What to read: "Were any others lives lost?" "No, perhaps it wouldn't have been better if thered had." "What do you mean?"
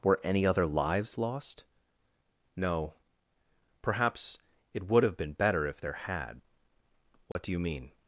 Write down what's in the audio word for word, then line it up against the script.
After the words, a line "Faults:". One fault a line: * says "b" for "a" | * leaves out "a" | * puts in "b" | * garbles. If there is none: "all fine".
"Were any other lives lost?" "No, perhaps it would have been better if there had." "What do you mean?"
Faults:
* says "other" for "others"
* says "would" for "wouldn't"
* says "there" for "thered"